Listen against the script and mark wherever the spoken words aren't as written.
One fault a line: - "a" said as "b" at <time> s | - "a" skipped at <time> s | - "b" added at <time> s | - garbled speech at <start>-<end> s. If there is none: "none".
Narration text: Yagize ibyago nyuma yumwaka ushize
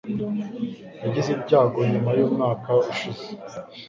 none